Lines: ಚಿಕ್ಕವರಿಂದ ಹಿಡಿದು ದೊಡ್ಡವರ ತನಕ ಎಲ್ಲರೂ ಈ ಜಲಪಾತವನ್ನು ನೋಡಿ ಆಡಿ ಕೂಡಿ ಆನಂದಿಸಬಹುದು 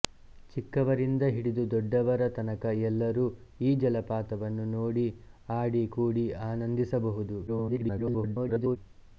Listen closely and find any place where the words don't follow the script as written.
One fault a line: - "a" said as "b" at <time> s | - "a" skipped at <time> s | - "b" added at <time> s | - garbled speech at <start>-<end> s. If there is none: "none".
- garbled speech at 7.5-8.8 s